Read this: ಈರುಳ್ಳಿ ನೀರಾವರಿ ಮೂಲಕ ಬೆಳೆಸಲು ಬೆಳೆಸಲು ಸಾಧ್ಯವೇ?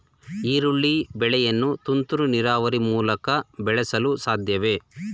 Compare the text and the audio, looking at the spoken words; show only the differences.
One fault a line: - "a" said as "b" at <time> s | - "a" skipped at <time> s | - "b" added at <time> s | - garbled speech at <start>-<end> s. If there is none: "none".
- "ಬೆಳೆಯನ್ನು ತುಂತುರು" added at 1.1 s
- "ಬೆಳೆಸಲು" skipped at 4.2 s